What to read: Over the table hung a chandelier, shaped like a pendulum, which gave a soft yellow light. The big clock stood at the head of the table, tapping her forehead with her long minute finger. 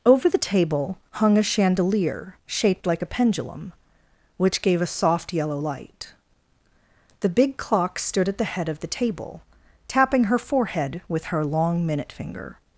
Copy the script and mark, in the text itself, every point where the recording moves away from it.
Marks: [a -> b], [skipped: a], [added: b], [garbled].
Over the table hung a chandelier, shaped like a pendulum, which gave a soft yellow light. The big clock stood at the head of the table, tapping her forehead with her long minute finger.